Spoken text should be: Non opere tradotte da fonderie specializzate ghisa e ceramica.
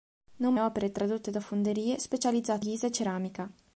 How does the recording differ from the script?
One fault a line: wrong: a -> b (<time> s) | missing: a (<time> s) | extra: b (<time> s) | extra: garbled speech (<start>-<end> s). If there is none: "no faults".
no faults